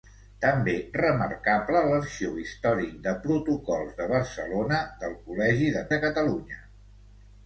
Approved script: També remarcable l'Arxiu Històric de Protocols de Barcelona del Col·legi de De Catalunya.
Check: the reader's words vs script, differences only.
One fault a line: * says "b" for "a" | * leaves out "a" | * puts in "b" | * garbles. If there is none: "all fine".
all fine